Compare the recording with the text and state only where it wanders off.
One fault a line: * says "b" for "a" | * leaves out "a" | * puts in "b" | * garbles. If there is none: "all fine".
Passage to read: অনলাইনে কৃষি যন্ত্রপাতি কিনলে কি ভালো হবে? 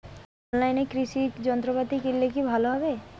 all fine